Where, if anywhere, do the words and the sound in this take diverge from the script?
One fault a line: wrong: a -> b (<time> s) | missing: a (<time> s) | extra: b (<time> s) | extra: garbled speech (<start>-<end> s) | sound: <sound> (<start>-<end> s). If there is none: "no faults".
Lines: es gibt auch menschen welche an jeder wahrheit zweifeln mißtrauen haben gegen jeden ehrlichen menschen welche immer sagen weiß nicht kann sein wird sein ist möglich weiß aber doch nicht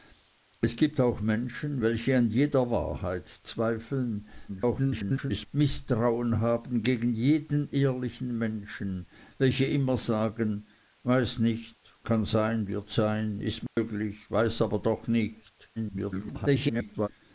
extra: garbled speech (4.5-5.5 s)
sound: dropout (13.7-13.8 s)
extra: garbled speech (15.8-17.1 s)